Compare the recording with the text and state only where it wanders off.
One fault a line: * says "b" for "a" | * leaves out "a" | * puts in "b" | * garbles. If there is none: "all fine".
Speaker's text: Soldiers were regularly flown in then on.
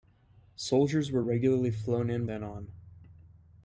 all fine